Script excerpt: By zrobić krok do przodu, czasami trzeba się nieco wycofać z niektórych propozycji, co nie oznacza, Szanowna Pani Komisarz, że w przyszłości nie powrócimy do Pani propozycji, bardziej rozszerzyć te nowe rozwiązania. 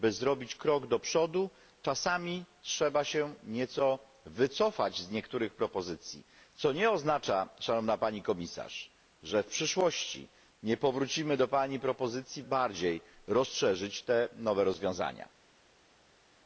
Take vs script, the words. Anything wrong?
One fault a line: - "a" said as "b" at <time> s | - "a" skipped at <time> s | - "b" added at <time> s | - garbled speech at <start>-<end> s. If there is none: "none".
none